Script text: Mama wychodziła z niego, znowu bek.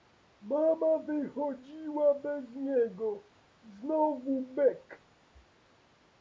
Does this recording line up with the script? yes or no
no